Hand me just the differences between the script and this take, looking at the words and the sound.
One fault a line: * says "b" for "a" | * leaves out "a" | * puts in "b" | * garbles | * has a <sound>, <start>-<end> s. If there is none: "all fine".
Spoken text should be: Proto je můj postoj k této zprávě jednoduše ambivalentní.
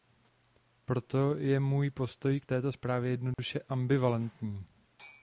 * has a dropout, 3.3-3.4 s